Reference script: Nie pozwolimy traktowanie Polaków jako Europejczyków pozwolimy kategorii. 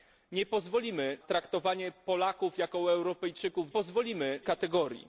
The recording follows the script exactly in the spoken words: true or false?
true